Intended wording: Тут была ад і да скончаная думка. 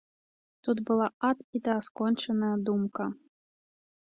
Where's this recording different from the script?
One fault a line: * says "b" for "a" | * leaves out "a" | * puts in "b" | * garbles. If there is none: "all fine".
all fine